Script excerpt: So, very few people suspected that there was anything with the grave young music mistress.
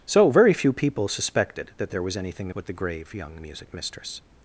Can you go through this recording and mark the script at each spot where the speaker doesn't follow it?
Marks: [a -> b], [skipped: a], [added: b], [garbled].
So, very few people suspected that there was anything with the grave young music mistress.